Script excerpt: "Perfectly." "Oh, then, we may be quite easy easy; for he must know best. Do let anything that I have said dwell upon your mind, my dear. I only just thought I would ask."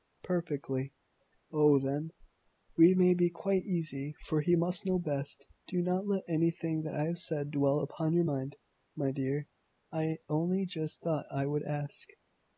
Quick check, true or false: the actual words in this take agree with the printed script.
false